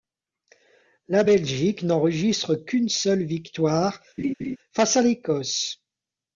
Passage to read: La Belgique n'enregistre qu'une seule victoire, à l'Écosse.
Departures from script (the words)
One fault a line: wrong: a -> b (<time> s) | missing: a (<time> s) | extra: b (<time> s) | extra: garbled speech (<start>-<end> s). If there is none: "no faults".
extra: face (4.7 s)